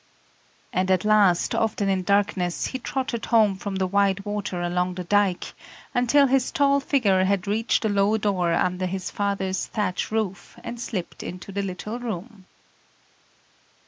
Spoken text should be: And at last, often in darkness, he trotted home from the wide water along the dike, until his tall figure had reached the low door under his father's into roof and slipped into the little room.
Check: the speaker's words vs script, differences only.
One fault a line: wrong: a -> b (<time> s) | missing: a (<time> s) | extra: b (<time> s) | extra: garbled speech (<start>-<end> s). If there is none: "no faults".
wrong: into -> thatch (9.6 s)